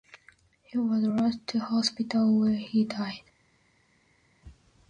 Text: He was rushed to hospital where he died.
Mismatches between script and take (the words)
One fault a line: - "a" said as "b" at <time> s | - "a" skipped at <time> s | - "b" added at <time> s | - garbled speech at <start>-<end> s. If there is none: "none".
none